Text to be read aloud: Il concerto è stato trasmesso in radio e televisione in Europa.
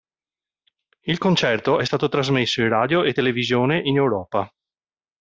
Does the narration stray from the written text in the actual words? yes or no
no